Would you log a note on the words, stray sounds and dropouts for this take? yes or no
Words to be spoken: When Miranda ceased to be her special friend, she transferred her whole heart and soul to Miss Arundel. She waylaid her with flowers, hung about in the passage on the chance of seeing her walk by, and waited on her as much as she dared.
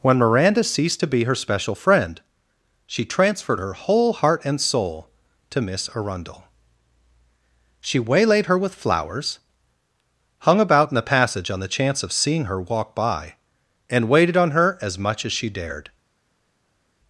no